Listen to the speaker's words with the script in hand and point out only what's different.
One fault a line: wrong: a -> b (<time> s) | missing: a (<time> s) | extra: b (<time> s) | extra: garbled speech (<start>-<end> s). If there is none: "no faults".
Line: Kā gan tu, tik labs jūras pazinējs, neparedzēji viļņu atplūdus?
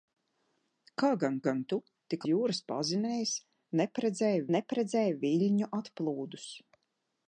extra: gan (1.5 s)
missing: labs (2.2 s)
extra: neparedzēji (4.6 s)